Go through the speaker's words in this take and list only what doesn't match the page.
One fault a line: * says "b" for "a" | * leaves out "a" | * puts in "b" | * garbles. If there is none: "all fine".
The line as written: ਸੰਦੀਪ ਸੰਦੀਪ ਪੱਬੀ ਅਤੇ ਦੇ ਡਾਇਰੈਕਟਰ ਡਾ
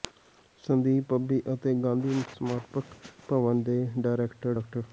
* leaves out "ਸੰਦੀਪ"
* puts in "ਗਾਂਧੀ ਸਮਾਰਕ ਭਵਨ"